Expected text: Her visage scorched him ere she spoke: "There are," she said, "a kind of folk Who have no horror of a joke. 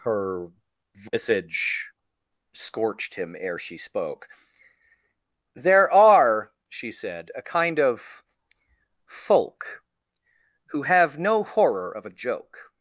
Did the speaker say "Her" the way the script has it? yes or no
yes